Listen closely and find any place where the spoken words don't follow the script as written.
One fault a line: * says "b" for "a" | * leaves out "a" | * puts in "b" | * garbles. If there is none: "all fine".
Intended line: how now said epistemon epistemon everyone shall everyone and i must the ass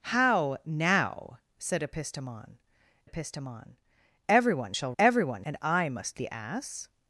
all fine